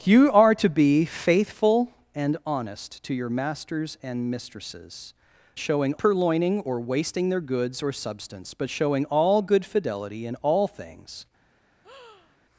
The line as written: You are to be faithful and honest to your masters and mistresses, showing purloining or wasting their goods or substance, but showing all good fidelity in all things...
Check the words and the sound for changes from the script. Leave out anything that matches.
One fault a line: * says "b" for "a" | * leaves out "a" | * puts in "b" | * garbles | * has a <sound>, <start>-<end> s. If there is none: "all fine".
* has a breath, 11.8-12.4 s